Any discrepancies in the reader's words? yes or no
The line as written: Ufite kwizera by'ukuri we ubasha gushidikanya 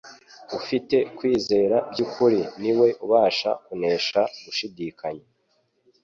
yes